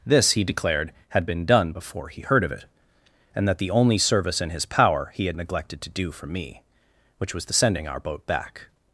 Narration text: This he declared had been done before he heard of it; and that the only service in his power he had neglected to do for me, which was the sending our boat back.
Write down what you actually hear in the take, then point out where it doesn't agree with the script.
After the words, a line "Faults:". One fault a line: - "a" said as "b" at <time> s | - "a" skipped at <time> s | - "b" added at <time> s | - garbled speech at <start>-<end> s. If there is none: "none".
This he declared had been done before he heard of it; and that the only service in his power he had neglected to do for me, which was the sending our boat back.
Faults:
none